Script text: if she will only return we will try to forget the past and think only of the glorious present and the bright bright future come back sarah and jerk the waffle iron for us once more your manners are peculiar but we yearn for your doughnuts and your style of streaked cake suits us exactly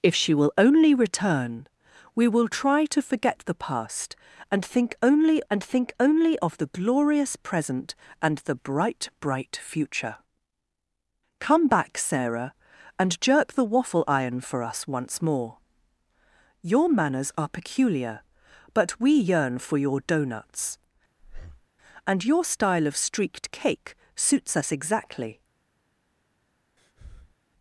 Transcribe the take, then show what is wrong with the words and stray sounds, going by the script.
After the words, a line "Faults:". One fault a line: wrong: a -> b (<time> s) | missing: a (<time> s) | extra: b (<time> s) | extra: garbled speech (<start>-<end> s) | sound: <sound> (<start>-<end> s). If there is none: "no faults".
if she will only return we will try to forget the past and think only and think only of the glorious present and the bright bright future come back sarah and jerk the waffle iron for us once more your manners are peculiar but we yearn for your doughnuts and your style of streaked cake suits us exactly
Faults:
extra: and think only (5.5 s)
sound: breath (21.2-21.7 s)
sound: breath (26.8-27.4 s)